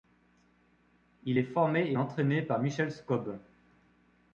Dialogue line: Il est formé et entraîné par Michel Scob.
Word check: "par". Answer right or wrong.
right